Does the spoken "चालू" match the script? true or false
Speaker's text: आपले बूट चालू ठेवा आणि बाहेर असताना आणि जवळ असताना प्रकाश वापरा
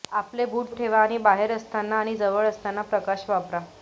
false